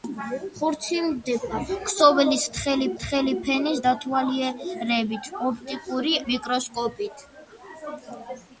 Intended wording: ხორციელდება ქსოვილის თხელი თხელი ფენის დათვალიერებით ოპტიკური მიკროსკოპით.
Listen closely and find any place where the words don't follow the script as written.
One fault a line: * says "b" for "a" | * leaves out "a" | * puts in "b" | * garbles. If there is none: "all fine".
all fine